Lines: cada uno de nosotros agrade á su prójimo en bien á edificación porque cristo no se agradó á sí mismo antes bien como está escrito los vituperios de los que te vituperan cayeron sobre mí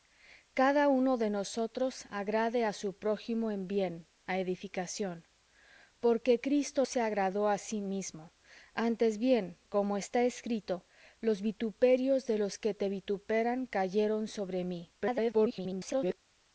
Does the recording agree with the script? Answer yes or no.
no